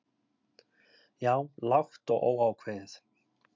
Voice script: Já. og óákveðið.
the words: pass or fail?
fail